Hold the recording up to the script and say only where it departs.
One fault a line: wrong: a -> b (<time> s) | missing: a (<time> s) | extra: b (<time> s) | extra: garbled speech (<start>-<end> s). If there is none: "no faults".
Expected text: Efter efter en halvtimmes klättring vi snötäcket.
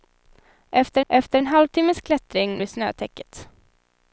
no faults